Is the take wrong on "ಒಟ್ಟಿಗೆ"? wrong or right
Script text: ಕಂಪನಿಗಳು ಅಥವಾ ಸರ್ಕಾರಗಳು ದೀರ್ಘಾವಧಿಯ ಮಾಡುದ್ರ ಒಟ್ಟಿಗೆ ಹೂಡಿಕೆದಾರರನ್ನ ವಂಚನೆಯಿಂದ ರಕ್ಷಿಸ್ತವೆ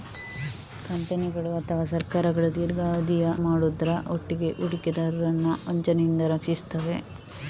right